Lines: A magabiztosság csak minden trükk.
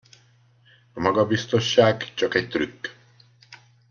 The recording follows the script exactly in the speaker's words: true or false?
false